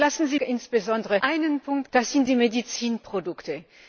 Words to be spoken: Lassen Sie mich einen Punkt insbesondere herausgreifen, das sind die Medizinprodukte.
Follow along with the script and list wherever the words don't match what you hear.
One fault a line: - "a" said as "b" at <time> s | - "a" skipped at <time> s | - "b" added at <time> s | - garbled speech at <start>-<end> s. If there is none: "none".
- "mich" said as "insbesondere" at 0.4 s
- "insbesondere herausgreifen" skipped at 1.9 s